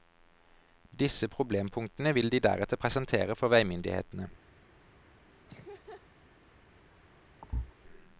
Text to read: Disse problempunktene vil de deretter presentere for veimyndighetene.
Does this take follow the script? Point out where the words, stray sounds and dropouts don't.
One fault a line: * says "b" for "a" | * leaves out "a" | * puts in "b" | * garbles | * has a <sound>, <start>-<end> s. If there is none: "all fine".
* has a laugh, 5.5-6.1 s
* has a thud, 7.4-7.7 s